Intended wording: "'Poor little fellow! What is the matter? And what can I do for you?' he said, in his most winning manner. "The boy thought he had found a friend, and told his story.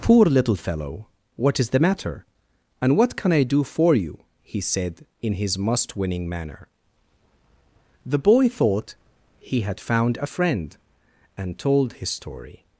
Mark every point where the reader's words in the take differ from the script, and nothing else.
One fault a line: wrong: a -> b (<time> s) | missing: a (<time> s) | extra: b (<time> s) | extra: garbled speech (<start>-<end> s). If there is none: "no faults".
wrong: most -> must (5.6 s)